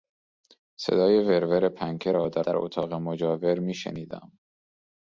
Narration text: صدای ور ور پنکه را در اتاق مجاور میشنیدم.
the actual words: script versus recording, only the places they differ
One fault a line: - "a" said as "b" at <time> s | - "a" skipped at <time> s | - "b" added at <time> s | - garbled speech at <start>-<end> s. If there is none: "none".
- "در" added at 2.4 s